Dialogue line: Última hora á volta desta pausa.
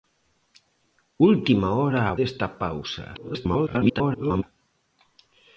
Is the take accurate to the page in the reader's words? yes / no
no